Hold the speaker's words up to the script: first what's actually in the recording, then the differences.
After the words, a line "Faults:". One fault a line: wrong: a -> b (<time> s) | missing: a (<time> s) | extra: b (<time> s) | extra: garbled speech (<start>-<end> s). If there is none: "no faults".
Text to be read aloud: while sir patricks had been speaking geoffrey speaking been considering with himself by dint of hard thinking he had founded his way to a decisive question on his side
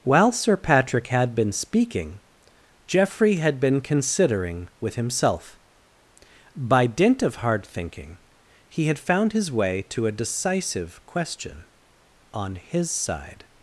while sir patrick had been speaking geoffrey had been considering with himself by dint of hard thinking he had found his way to a decisive question on his side
Faults:
wrong: patricks -> patrick (0.6 s)
wrong: speaking -> had (3.3 s)
wrong: founded -> found (9.0 s)